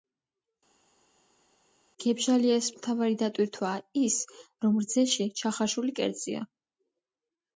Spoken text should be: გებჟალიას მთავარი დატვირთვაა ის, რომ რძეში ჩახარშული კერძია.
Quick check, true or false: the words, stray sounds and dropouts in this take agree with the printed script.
true